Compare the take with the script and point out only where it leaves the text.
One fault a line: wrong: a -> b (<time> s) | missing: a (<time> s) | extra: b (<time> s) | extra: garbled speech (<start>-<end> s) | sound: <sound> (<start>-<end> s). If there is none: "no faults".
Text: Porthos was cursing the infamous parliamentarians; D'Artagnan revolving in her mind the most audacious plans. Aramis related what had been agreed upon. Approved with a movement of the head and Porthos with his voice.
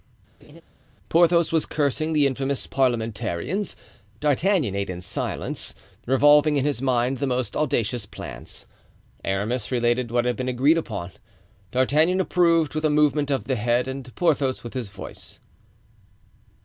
sound: laugh (0.4-0.6 s)
extra: ate in silence (4.7 s)
wrong: her -> his (6.6 s)
extra: D'Artagnan (11.7 s)